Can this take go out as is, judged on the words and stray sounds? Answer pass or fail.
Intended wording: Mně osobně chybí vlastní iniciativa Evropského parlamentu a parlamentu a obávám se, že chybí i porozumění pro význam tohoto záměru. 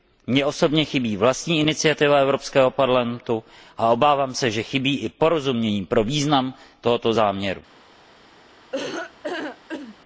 fail